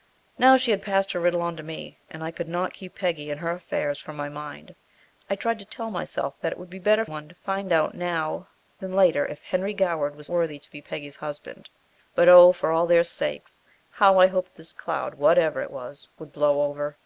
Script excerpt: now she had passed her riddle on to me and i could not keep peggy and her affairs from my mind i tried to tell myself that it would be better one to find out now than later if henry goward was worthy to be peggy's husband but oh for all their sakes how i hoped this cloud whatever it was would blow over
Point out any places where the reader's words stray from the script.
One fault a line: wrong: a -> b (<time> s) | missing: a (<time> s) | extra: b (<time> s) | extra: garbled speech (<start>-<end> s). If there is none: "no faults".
no faults